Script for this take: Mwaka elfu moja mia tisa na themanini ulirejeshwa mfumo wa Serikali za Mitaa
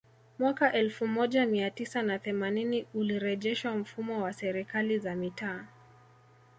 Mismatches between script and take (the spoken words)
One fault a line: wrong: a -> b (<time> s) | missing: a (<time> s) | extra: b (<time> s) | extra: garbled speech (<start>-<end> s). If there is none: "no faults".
no faults